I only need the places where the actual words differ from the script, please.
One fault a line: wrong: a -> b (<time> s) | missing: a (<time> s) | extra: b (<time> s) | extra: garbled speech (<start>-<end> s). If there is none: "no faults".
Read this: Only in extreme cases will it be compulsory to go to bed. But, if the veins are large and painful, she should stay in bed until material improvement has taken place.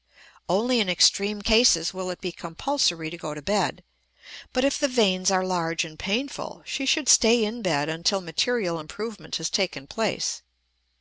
no faults